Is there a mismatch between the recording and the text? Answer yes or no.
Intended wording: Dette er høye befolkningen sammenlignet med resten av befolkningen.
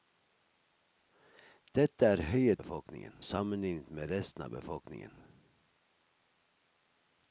no